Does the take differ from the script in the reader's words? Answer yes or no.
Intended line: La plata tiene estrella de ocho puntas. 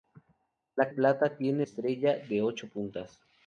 no